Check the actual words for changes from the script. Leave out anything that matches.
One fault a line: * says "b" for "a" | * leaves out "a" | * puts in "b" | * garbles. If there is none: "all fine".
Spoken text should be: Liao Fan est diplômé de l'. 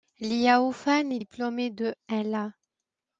all fine